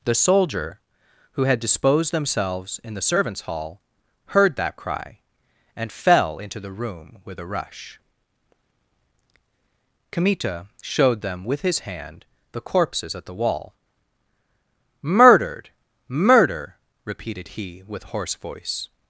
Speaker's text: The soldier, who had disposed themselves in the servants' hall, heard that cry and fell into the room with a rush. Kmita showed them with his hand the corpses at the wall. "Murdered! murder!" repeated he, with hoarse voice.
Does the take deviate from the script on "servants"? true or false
false